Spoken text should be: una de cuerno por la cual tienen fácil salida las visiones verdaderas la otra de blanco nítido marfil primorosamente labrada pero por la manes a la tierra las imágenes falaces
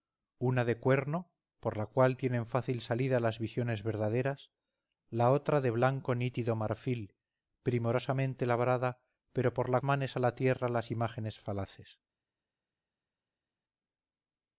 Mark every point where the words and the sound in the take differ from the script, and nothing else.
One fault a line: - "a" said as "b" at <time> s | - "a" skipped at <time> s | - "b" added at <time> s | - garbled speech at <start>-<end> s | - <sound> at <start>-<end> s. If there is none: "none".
none